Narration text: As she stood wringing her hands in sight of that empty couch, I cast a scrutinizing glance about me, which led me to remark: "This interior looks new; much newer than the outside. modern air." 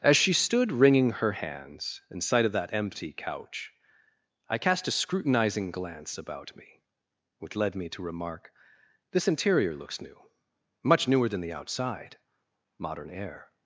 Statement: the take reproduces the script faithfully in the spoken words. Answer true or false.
true